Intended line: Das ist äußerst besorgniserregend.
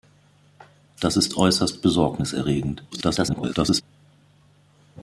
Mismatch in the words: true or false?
true